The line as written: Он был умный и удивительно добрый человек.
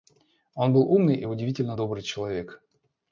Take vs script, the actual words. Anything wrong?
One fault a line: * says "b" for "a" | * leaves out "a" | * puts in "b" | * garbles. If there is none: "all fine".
all fine